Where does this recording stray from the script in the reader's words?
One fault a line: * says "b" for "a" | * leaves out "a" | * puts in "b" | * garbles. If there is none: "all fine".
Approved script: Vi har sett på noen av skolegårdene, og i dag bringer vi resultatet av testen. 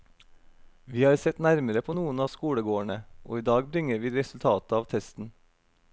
* puts in "nærmere"